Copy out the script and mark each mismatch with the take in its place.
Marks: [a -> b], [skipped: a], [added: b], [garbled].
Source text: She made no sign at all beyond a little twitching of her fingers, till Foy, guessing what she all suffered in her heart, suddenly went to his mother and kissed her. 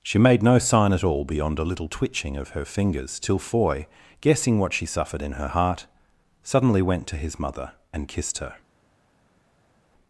She made no sign at all beyond a little twitching of her fingers, till Foy, guessing what she [skipped: all] suffered in her heart, suddenly went to his mother and kissed her.